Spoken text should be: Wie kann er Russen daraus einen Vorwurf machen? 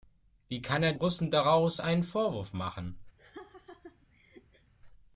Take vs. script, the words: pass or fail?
pass